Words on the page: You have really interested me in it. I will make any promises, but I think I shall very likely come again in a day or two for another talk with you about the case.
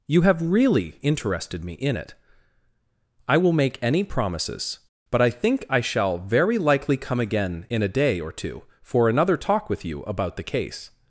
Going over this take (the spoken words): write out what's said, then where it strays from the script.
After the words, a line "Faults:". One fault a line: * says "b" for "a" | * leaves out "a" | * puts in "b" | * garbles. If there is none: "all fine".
You have really interested me in it. I will make any promises, but I think I shall very likely come again in a day or two for another talk with you about the case.
Faults:
all fine